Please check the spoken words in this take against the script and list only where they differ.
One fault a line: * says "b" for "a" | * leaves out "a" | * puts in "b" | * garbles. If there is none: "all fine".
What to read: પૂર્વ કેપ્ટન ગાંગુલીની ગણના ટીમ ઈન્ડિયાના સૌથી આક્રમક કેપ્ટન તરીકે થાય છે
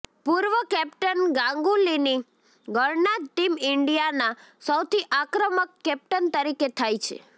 all fine